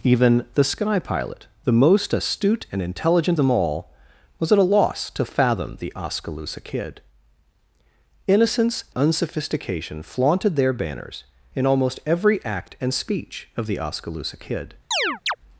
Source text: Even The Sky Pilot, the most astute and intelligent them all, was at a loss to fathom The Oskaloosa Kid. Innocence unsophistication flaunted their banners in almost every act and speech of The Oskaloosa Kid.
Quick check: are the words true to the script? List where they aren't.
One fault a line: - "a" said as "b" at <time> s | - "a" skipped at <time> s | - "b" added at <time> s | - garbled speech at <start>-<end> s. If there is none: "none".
none